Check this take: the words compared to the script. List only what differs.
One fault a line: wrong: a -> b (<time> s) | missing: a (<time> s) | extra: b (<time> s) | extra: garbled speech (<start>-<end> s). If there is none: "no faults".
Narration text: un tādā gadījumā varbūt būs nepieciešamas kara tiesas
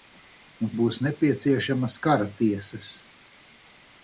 missing: tādā gadījumā varbūt (0.7 s)